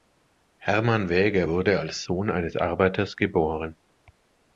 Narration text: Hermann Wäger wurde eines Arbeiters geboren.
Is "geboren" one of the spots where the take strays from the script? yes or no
no